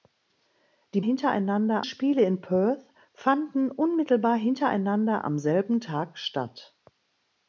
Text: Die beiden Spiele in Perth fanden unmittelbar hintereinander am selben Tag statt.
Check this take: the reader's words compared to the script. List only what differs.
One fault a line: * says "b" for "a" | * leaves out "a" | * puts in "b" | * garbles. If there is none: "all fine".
* says "hintereinander" for "beiden"